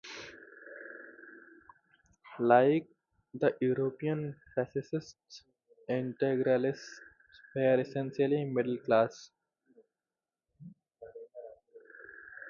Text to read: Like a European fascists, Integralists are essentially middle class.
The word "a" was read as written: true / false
false